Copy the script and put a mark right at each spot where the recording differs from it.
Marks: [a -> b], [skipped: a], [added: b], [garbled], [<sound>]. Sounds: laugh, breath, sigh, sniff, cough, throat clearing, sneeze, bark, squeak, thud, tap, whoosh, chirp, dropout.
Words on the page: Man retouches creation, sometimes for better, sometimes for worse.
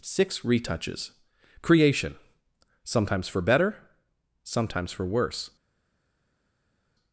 [Man -> Six] retouches creation, sometimes for better, sometimes for worse.